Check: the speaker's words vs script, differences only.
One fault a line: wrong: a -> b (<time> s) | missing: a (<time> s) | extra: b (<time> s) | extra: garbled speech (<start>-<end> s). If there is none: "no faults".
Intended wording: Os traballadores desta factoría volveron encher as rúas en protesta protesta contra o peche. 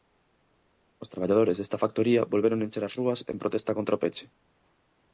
missing: protesta (3.8 s)